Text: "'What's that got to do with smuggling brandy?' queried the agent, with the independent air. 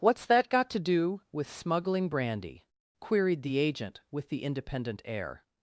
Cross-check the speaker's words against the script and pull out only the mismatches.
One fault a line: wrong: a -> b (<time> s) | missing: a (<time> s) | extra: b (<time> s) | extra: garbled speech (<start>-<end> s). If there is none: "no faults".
no faults